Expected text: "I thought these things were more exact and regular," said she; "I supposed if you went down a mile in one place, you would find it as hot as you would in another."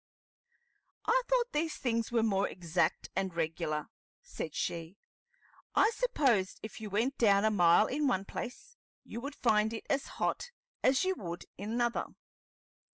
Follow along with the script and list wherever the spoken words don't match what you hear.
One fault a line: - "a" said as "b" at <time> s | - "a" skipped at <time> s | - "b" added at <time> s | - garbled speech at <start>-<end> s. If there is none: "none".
none